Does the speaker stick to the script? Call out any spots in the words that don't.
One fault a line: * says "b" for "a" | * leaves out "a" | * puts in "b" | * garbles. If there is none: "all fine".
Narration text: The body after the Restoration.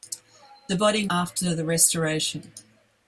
all fine